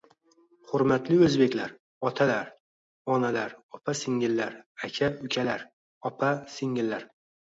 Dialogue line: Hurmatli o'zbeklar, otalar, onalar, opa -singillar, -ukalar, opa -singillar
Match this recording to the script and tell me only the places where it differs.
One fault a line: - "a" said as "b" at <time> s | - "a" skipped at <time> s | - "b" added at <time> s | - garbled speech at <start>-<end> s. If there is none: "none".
- "aka" added at 4.9 s